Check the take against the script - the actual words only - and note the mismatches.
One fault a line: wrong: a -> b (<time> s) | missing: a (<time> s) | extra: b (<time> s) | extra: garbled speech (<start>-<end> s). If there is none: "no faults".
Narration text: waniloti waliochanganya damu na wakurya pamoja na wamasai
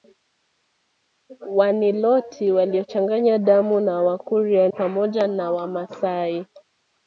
no faults